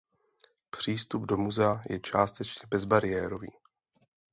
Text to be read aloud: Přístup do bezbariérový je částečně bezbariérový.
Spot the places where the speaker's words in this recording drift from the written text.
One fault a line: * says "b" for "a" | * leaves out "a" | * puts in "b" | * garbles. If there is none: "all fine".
* says "muzea" for "bezbariérový"